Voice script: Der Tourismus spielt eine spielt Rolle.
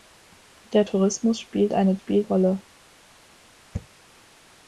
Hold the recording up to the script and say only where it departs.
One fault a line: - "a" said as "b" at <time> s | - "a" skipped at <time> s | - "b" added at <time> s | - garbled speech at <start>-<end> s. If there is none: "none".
none